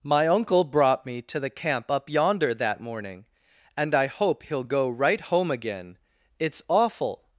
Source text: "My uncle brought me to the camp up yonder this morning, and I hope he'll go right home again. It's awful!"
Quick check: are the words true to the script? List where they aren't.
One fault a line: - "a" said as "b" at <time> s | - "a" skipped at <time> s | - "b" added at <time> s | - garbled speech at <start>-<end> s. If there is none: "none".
- "this" said as "that" at 2.5 s